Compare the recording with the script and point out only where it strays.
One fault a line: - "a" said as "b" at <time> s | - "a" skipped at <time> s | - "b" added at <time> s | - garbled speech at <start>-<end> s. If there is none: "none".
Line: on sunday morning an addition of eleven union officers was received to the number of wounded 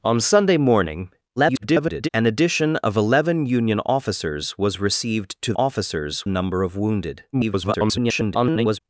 - garbled speech at 1.4-2.1 s
- "the" said as "officers" at 5.5 s
- garbled speech at 7.3-8.8 s